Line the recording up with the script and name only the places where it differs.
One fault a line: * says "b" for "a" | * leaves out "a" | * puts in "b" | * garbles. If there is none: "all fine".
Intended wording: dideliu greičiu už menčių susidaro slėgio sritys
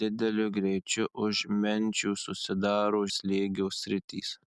all fine